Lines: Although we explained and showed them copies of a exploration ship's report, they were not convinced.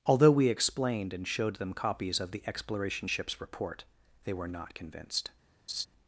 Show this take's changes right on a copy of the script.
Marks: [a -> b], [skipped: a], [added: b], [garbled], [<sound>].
Although we explained and showed them copies of [a -> the] exploration ship's report, they were not convinced. [laugh]